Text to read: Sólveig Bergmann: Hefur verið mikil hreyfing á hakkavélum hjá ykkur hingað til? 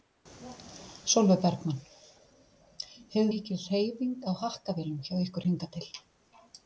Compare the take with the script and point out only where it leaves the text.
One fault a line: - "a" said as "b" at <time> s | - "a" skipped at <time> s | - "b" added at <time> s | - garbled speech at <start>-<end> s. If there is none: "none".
- "verið" skipped at 3.3 s